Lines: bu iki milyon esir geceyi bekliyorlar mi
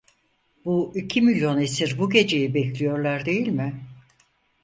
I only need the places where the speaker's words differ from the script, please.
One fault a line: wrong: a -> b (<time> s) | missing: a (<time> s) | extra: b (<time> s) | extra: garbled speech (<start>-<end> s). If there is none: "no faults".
extra: bu (2.0 s)
extra: değil (3.2 s)